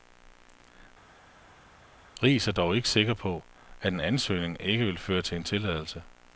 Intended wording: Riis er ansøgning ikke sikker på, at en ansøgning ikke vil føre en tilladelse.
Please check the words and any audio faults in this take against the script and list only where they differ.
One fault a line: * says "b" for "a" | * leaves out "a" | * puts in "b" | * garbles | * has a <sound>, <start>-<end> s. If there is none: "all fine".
* says "dog" for "ansøgning"
* puts in "til"